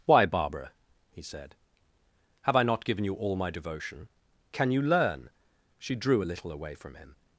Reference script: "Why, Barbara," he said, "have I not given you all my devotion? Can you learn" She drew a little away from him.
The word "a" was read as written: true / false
true